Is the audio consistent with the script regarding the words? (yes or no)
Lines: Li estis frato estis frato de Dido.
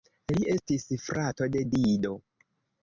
no